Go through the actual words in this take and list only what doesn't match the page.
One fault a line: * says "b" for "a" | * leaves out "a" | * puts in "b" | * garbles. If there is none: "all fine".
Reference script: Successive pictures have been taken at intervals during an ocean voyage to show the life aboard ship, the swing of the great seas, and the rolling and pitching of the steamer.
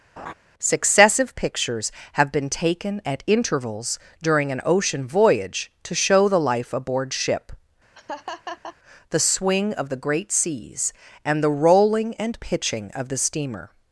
all fine